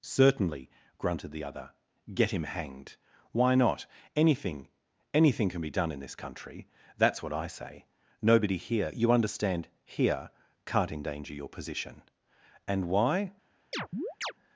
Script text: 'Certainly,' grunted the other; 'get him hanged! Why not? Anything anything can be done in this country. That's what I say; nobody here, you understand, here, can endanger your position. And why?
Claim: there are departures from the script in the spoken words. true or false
true